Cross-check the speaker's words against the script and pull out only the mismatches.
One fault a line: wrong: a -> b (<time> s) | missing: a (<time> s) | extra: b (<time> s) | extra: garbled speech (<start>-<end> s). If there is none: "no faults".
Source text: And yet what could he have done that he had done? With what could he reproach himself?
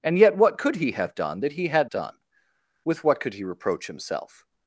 no faults